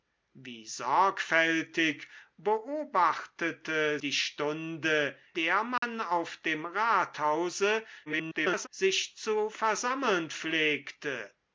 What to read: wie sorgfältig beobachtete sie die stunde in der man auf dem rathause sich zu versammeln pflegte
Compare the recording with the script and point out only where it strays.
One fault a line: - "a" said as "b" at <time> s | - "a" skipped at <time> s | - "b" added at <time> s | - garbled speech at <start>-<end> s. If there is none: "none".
- "sie" skipped at 4.0 s
- "in" skipped at 5.2 s
- garbled speech at 8.1-8.7 s